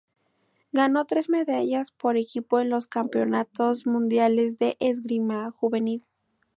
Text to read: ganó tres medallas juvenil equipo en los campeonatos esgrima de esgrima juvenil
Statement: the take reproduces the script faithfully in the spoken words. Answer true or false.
false